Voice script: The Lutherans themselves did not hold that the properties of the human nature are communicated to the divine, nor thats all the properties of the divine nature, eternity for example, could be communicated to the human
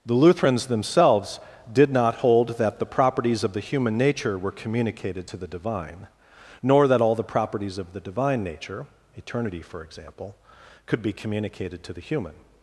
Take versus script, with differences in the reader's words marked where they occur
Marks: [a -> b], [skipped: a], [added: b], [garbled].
The Lutherans themselves did not hold that the properties of the human nature [are -> were] communicated to the divine, nor [thats -> that] all the properties of the divine nature, eternity for example, could be communicated to the human